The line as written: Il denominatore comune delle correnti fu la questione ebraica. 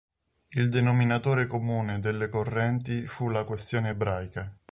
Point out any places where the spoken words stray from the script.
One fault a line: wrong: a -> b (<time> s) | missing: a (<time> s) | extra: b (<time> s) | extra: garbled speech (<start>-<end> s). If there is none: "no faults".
no faults